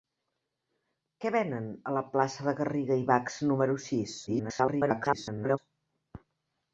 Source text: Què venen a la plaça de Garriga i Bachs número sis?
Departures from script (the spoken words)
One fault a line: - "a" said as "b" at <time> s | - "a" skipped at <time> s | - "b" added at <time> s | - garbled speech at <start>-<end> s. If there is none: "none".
- garbled speech at 4.3-5.6 s